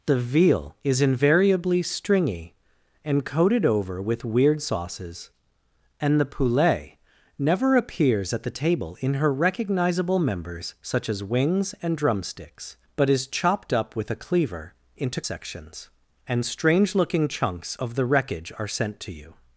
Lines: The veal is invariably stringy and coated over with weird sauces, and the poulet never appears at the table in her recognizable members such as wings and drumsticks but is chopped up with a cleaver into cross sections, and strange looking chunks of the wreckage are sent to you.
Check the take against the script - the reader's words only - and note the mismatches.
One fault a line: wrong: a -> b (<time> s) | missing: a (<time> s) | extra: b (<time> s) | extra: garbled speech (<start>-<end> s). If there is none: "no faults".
missing: cross (15.2 s)